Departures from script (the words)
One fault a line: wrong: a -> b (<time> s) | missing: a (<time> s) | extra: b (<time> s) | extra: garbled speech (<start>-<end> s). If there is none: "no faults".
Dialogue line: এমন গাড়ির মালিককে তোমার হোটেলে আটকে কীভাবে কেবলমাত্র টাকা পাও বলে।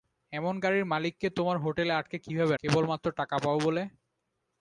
no faults